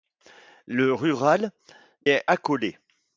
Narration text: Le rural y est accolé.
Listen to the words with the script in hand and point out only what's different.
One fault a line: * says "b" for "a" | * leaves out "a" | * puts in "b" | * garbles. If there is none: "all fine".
* leaves out "y"